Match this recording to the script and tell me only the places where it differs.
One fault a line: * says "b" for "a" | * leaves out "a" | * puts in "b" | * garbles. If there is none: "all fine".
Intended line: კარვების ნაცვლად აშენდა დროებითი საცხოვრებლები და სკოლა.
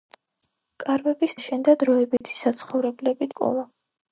* leaves out "ნაცვლად"
* leaves out "და"